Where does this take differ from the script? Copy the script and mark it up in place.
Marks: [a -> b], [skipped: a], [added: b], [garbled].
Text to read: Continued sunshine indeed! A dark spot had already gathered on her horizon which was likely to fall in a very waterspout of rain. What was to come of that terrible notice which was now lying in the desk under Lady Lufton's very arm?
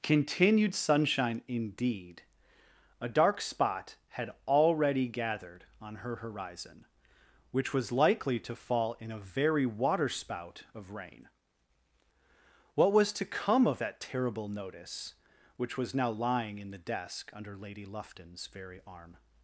Continued sunshine indeed! A dark spot had already gathered on her horizon which was likely to fall in a very waterspout of rain. What was to come of that terrible notice which was now lying in the desk under Lady Lufton's very arm?